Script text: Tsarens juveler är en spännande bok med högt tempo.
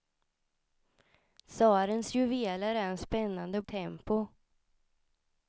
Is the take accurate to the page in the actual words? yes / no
no